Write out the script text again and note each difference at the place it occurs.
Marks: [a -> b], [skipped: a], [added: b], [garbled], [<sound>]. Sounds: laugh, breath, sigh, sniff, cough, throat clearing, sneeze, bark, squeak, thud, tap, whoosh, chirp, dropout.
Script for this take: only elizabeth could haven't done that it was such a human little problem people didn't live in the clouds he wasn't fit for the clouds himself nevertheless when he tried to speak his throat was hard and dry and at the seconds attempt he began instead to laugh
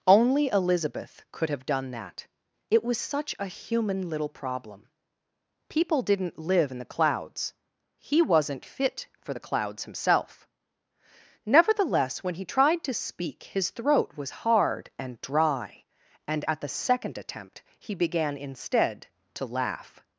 only elizabeth could [haven't -> have] done that it was such a human little problem people didn't live in the clouds he wasn't fit for the clouds himself nevertheless when he tried to speak his throat was hard and dry and at the [seconds -> second] attempt he began instead to laugh